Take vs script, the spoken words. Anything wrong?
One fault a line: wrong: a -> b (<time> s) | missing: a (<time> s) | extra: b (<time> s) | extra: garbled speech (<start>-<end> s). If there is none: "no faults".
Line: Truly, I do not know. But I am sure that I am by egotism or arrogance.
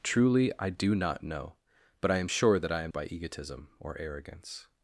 no faults